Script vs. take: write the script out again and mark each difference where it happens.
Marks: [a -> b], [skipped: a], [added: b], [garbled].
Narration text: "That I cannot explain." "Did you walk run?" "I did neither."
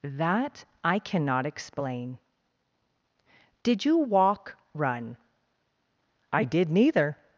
"That I cannot explain." "Did you walk run?" "I did neither."